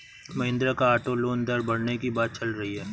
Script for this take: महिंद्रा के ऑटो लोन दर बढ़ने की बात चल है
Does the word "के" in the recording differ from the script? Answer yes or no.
yes